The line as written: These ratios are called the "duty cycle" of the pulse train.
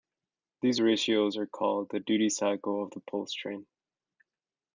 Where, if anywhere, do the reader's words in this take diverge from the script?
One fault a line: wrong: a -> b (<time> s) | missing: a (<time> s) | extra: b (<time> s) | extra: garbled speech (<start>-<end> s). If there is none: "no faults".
no faults